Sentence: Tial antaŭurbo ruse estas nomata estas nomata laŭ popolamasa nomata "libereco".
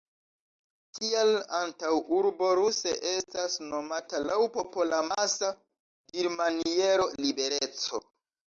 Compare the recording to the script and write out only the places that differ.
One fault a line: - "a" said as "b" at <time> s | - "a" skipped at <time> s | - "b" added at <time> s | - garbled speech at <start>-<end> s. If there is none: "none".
- "estas nomata" skipped at 4.2 s
- "nomata" said as "dirmaniero" at 6.2 s